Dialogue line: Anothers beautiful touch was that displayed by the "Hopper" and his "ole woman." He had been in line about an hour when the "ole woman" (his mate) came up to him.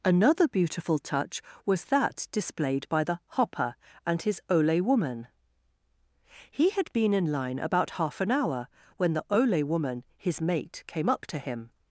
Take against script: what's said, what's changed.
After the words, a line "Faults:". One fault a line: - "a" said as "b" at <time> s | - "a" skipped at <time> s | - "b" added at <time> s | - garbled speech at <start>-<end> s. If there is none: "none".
Another beautiful touch was that displayed by the "Hopper" and his "ole woman." He had been in line about half an hour when the "ole woman" (his mate) came up to him.
Faults:
- "Anothers" said as "Another" at 0.0 s
- "half" added at 8.0 s